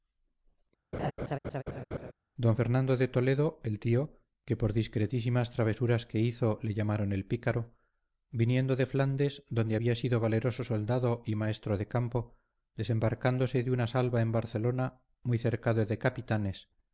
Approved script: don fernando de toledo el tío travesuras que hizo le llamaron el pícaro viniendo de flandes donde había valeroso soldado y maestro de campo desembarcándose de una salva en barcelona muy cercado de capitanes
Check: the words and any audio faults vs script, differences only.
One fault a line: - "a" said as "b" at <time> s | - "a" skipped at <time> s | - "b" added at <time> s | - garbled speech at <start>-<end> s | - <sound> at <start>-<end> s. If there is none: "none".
- laugh at 0.9-2.1 s
- "que por discretísimas" added at 4.5 s
- "sido" added at 9.9 s